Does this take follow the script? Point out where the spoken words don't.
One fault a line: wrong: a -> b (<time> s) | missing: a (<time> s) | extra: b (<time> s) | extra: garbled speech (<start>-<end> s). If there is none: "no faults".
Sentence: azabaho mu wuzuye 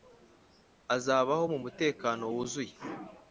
extra: mutekano (1.6 s)